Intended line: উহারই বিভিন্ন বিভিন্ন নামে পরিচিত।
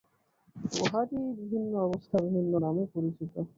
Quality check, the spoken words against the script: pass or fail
fail